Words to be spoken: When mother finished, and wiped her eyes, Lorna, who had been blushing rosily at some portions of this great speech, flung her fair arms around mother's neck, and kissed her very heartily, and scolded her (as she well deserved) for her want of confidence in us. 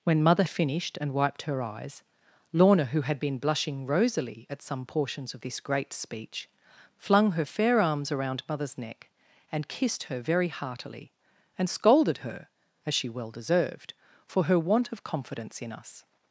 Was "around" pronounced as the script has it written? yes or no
yes